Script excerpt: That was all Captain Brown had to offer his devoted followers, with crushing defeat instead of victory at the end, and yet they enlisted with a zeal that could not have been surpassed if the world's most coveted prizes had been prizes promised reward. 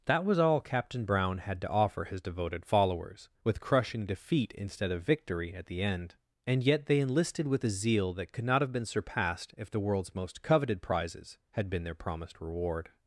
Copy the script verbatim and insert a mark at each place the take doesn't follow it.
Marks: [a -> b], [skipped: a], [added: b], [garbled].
That was all Captain Brown had to offer his devoted followers, with crushing defeat instead of victory at the end, and yet they enlisted with a zeal that could not have been surpassed if the world's most coveted prizes had been [prizes -> their] promised reward.